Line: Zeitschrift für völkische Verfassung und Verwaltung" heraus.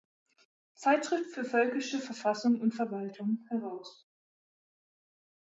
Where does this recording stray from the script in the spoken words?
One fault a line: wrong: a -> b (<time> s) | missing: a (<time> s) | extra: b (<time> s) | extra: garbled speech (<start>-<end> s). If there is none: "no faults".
no faults